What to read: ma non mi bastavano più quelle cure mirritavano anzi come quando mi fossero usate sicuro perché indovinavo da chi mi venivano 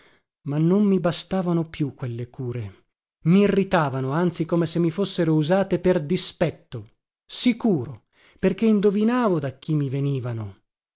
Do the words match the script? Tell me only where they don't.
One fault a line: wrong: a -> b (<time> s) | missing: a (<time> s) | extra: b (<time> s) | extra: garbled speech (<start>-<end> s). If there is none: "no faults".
wrong: quando -> se (4.7 s)
extra: per dispetto (5.8 s)